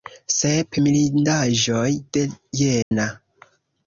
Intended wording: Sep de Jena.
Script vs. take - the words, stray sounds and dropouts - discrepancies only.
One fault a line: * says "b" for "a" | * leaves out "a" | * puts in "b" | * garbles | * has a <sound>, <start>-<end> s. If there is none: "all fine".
* puts in "mirindaĵoj"
* has a dropout, 2.8-2.9 s